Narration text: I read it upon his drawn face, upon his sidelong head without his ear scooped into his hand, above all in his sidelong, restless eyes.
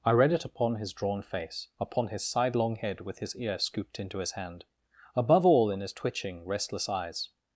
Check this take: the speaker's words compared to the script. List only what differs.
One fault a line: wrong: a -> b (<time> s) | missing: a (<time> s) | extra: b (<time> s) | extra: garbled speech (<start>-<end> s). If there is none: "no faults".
wrong: without -> with (3.0 s)
wrong: sidelong -> twitching (5.9 s)